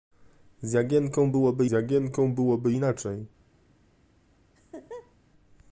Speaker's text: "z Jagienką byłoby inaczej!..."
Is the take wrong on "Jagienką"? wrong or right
right